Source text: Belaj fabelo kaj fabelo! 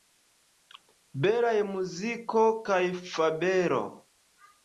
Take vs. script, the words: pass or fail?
fail